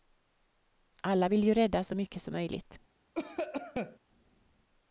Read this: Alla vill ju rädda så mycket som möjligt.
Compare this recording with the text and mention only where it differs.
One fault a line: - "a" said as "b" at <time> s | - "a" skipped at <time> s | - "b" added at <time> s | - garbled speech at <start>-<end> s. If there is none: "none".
none